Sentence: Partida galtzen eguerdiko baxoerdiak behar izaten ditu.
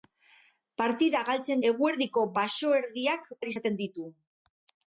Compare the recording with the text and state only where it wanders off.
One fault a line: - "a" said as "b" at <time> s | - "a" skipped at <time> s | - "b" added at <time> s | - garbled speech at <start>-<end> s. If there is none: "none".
none